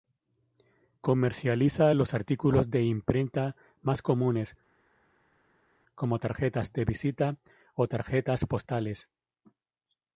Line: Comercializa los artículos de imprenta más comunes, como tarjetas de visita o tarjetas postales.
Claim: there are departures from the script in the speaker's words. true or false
false